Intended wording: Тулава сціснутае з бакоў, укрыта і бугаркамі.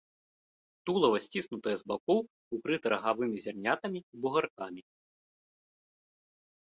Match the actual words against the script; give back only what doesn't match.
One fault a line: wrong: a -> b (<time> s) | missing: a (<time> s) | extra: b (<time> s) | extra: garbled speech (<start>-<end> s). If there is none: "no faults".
extra: рагавымі зярнятамі (2.9 s)